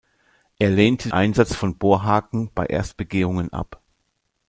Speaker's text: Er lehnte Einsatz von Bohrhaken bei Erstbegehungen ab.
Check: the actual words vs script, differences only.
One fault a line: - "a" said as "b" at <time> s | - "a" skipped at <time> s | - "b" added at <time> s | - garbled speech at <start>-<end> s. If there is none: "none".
none